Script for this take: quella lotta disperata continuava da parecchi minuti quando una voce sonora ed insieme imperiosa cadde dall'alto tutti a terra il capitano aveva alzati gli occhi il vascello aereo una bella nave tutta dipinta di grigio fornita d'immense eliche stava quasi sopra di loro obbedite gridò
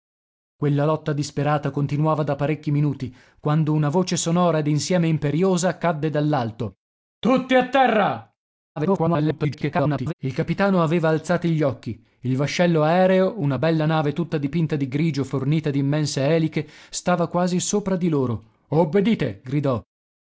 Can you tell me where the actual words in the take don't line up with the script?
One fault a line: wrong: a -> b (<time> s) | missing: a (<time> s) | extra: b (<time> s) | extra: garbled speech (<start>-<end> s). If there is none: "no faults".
extra: garbled speech (8.8-10.1 s)